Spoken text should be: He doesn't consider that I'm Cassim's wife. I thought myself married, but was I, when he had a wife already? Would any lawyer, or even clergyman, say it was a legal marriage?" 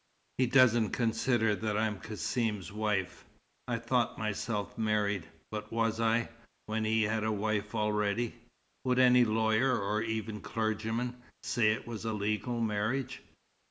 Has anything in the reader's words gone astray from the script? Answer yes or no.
no